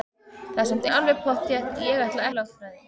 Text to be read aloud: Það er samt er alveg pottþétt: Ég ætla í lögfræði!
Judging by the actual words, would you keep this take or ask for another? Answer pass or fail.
pass